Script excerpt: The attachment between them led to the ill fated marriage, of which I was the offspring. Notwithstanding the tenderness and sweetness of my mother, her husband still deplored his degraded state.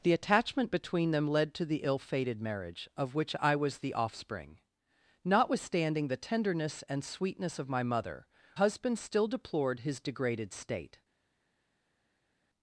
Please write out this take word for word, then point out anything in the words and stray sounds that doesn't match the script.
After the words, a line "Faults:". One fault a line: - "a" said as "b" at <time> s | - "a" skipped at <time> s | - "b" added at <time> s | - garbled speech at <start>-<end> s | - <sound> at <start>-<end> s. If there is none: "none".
The attachment between them led to the ill fated marriage, of which I was the offspring. Notwithstanding the tenderness and sweetness of my mother, husband still deplored his degraded state.
Faults:
- "her" skipped at 8.3 s